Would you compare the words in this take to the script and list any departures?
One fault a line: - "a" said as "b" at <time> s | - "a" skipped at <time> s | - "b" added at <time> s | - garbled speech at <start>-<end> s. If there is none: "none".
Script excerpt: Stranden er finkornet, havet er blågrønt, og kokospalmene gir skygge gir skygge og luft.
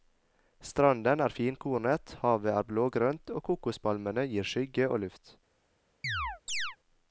- "gir skygge" skipped at 4.9 s